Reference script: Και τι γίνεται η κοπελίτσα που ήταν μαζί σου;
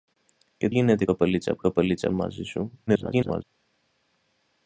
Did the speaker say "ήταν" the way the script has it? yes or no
no